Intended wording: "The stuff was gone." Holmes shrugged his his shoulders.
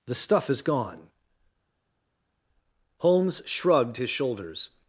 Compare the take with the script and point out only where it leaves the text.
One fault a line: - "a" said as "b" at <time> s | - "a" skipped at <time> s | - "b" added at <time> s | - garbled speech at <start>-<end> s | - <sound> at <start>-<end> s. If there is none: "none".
- "was" said as "is" at 0.5 s
- "his" skipped at 4.1 s